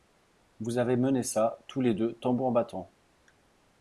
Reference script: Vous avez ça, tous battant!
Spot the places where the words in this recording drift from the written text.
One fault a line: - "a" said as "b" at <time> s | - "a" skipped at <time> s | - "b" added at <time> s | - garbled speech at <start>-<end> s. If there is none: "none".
- "mené" added at 1.0 s
- "les deux tambour" added at 1.8 s